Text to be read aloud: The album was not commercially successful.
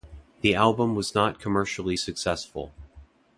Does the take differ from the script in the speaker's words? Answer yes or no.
no